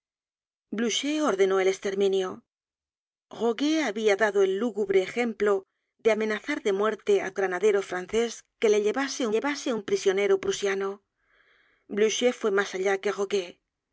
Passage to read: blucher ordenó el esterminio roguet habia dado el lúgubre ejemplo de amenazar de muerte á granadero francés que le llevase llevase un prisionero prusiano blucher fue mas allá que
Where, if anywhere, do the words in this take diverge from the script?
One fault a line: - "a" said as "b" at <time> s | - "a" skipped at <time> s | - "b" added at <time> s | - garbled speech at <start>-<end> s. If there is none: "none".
none